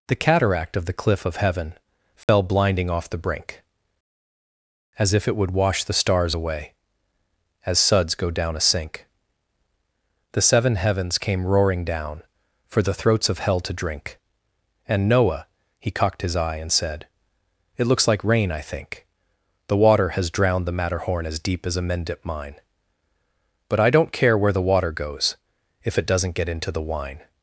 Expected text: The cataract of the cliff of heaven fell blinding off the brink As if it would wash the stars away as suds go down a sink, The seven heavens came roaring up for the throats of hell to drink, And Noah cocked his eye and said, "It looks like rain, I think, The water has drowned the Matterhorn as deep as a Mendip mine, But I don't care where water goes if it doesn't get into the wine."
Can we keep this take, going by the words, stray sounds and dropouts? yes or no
no